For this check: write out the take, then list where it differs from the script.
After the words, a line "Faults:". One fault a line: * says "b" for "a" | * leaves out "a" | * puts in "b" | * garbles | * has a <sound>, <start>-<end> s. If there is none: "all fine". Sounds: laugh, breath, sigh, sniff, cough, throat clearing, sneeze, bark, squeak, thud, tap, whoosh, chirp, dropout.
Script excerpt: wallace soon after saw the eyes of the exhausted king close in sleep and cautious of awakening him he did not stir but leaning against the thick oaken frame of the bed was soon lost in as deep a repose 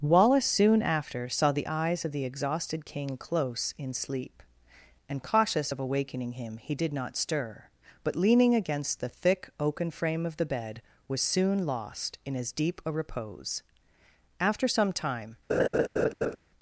wallace soon after saw the eyes of the exhausted king close in sleep and cautious of awakening him he did not stir but leaning against the thick oaken frame of the bed was soon lost in as deep a repose after some time
Faults:
* puts in "after some time"
* has a laugh, 15.5-16.4 s